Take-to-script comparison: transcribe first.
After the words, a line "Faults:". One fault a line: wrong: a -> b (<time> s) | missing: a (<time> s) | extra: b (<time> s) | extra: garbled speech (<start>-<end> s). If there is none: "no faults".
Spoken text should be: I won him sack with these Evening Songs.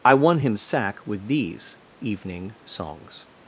I won him sack with these Evening Songs.
Faults:
no faults